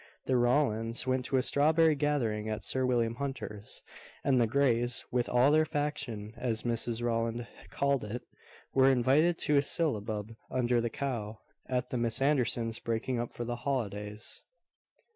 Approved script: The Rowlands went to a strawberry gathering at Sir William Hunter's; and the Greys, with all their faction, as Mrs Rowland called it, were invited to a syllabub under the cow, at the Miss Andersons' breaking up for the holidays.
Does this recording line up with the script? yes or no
yes